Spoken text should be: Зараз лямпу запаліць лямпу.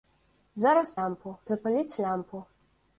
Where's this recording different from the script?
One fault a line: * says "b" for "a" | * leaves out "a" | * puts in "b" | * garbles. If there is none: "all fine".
all fine